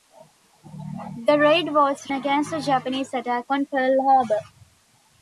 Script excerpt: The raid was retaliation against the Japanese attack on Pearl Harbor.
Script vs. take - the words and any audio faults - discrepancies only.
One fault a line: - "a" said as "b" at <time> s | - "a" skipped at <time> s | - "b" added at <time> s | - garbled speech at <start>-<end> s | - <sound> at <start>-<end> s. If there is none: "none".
- "retaliation" skipped at 2.1 s